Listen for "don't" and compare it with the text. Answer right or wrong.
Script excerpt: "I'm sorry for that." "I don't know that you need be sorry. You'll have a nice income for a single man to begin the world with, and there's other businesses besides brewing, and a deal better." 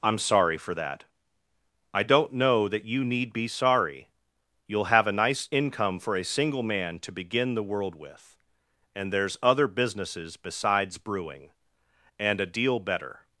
right